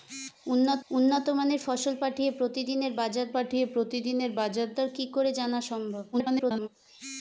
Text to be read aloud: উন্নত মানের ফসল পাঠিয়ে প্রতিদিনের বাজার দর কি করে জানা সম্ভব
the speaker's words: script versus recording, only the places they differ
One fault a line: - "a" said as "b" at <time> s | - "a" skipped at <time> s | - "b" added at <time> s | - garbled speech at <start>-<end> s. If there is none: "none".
- "উন্নত" added at 0.9 s
- "পাঠিয়ে প্রতিদিনের বাজার" added at 3.3 s
- garbled speech at 6.1-6.7 s